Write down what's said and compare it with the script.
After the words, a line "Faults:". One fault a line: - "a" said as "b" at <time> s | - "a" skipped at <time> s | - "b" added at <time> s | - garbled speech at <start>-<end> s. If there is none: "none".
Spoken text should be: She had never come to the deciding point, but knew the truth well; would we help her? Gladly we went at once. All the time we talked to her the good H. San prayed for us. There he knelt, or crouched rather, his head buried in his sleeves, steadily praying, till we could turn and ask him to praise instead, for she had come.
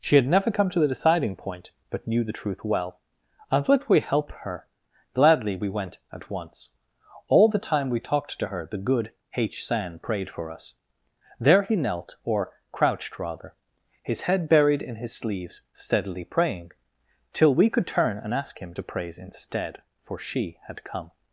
She had never come to the deciding point, but knew the truth well; and would we help her? Gladly we went at once. All the time we talked to her the good H. San prayed for us. There he knelt, or crouched rather, his head buried in his sleeves, steadily praying, till we could turn and ask him to praise instead, for she had come.
Faults:
- "and" added at 3.5 s